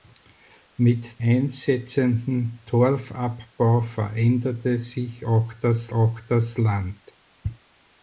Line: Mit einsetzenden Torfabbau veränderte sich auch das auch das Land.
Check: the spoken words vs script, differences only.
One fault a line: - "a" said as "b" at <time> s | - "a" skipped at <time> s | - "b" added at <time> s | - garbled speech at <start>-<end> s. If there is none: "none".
none